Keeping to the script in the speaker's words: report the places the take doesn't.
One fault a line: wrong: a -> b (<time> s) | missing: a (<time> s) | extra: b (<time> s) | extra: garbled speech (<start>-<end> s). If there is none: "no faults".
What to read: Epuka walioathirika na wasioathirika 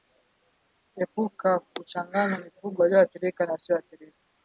extra: kuchanganya mifugo (1.6 s)